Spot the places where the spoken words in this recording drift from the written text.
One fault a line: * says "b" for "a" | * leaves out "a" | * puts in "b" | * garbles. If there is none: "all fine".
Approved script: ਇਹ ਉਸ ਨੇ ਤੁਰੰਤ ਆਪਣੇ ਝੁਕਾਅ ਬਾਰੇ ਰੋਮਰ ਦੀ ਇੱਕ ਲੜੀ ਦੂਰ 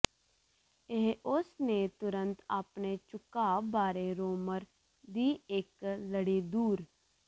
all fine